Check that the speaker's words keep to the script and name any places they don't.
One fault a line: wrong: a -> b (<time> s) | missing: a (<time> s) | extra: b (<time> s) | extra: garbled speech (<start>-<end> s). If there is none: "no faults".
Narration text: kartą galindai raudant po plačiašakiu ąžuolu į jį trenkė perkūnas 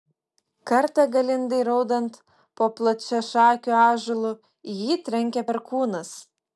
no faults